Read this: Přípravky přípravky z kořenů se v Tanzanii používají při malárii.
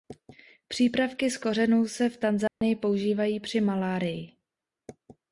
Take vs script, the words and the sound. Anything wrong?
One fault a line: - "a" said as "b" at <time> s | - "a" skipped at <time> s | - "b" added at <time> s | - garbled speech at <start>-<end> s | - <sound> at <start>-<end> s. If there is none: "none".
- "přípravky" skipped at 1.3 s
- dropout at 2.5-2.6 s